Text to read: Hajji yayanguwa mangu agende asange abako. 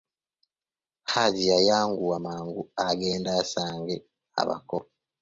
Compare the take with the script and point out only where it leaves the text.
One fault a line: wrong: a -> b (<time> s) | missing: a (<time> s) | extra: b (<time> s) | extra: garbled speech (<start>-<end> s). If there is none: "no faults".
no faults